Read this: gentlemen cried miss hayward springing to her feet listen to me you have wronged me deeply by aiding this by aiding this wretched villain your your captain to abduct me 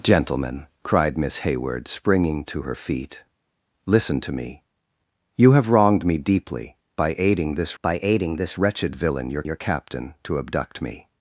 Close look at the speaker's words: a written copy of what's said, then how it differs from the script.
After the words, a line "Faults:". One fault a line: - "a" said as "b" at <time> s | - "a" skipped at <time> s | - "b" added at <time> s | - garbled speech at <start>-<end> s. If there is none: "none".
gentlemen cried miss hayward springing to her feet listen to me you have wronged me deeply by aiding this by aiding this wretched villain your your captain to abduct me
Faults:
none